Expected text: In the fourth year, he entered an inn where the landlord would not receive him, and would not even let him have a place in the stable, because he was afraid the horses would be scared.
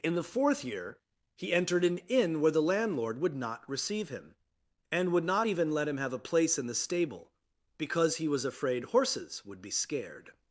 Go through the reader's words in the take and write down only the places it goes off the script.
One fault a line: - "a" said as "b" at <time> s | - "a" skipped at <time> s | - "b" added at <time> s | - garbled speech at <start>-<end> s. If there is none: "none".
- "the" skipped at 8.8 s